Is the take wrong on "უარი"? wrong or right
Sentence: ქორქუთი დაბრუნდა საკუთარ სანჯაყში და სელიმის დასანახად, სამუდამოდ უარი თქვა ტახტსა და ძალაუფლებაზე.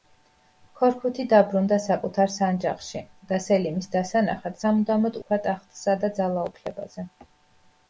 wrong